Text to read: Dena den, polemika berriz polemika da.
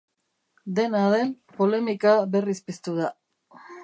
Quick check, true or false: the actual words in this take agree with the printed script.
false